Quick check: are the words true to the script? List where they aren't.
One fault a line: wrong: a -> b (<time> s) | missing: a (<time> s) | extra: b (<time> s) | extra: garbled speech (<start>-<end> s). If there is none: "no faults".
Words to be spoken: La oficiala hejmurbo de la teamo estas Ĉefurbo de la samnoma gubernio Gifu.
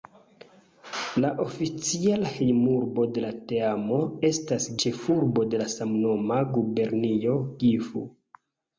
no faults